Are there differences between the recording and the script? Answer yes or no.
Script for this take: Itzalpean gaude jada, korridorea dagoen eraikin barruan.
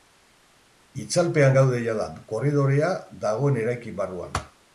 no